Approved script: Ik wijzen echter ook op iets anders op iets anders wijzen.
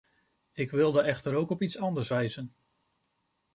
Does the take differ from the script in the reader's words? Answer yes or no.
yes